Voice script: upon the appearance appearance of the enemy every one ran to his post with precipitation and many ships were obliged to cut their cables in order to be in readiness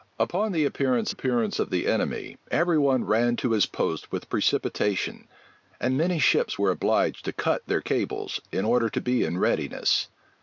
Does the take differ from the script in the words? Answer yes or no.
no